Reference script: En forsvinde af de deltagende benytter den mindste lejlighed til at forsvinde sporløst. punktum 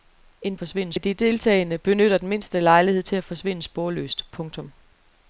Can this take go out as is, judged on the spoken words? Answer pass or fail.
pass